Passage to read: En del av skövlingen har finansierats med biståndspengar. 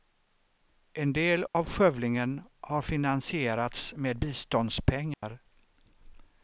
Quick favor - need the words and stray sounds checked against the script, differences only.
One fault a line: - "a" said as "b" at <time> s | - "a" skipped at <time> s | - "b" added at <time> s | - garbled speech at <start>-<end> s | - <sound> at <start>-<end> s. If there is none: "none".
- dropout at 1.5-1.5 s
- dropout at 5.1-5.2 s